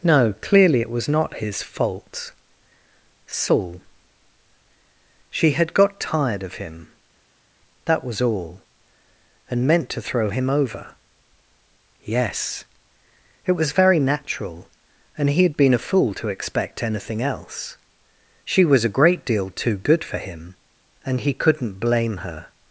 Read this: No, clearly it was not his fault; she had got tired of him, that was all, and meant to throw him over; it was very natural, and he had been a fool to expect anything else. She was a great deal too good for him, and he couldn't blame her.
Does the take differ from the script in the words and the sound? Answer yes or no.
yes